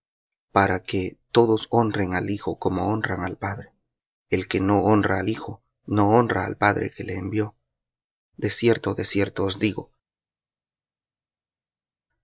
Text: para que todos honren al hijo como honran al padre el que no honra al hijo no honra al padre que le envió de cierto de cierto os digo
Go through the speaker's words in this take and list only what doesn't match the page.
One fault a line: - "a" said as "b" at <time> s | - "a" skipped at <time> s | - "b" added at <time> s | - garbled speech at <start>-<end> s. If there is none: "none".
none